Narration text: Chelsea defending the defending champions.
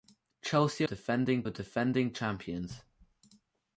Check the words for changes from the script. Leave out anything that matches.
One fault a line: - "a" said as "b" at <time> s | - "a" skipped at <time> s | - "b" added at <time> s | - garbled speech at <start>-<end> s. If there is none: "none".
none